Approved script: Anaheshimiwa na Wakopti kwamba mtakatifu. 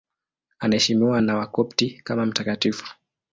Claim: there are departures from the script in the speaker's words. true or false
true